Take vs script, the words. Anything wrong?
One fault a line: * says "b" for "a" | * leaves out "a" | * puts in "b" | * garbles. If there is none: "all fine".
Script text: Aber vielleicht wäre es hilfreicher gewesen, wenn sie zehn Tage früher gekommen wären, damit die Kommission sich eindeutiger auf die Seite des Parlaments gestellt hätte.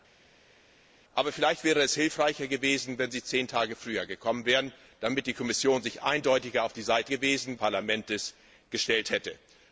* says "gewesen" for "des"